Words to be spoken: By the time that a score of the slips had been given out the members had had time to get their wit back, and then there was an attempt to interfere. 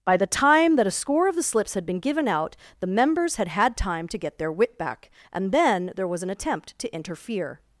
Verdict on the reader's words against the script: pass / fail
pass